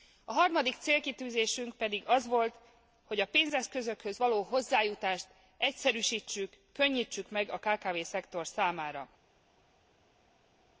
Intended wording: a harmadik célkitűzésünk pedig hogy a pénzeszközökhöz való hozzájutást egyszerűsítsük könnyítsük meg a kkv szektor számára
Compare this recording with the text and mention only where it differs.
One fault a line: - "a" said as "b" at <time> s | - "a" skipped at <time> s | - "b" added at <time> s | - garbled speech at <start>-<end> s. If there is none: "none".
- "az volt" added at 2.0 s